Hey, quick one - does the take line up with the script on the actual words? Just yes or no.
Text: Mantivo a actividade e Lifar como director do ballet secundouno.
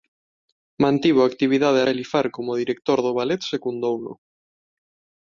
yes